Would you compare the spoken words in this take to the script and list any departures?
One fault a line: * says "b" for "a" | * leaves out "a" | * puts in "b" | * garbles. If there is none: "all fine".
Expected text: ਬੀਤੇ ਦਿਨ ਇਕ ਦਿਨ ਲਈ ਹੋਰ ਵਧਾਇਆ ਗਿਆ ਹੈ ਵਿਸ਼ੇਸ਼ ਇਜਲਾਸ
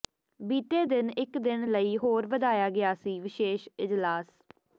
* says "ਸੀ" for "ਹੈ"